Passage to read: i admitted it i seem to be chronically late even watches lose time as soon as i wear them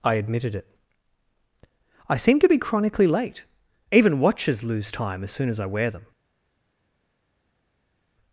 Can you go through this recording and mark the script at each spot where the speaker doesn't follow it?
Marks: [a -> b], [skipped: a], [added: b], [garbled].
i admitted it i seem to be chronically late even watches lose time as soon as i wear them